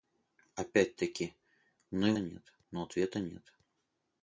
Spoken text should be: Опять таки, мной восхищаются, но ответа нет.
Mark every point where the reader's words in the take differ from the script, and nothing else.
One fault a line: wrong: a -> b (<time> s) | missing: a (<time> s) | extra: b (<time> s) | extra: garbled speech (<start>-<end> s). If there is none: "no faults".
wrong: восхищаются -> нет (2.2 s)